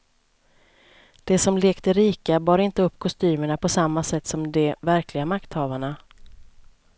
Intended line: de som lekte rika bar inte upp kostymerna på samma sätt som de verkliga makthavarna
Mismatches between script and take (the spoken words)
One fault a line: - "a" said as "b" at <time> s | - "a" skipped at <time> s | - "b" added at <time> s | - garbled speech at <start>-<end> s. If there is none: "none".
none